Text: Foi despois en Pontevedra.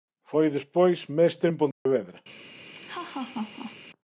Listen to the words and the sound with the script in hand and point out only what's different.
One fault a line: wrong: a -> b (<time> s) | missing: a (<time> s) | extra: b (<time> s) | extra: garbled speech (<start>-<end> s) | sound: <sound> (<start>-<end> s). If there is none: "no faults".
extra: mestre (1.2 s)
sound: dropout (1.7-1.9 s)
sound: laugh (2.7-3.8 s)